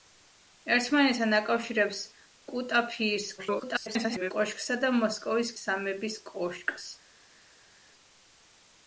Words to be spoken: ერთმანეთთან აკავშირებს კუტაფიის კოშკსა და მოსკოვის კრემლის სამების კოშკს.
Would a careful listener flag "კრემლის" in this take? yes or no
yes